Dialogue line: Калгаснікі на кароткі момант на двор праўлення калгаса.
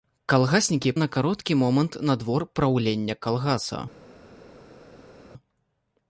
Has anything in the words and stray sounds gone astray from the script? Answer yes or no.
no